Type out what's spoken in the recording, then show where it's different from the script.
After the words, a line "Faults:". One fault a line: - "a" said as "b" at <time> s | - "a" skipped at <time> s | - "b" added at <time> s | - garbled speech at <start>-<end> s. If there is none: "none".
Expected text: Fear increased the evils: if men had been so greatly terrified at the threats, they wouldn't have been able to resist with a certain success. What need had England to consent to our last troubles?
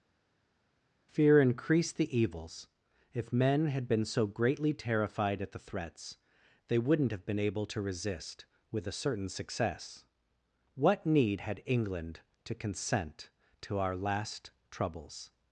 Fear increased the evils: if men had been so greatly terrified at the threats, they wouldn't have been able to resist with a certain success. What need had England to consent to our last troubles?
Faults:
none